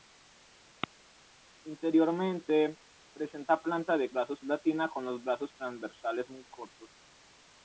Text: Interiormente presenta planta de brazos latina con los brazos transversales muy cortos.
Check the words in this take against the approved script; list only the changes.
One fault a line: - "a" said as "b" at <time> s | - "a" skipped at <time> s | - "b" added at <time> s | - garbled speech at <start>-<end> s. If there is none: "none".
none